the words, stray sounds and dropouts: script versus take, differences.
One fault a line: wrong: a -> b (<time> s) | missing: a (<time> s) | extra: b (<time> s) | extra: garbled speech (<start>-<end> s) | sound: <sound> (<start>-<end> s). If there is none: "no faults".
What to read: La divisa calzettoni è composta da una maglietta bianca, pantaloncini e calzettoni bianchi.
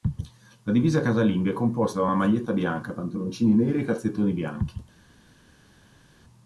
wrong: calzettoni -> casalinga (1.0 s)
extra: neri (3.5 s)